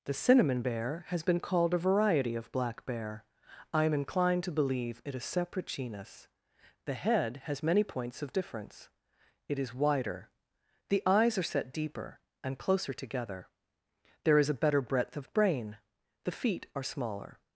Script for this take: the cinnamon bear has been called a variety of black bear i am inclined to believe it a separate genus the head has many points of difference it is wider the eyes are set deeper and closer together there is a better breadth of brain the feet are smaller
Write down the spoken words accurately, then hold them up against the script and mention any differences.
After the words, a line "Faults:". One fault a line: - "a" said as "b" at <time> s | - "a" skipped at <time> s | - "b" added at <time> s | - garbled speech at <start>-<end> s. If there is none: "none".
the cinnamon bear has been called a variety of black bear i am inclined to believe it a separate genus the head has many points of difference it is wider the eyes are set deeper and closer together there is a better breadth of brain the feet are smaller
Faults:
none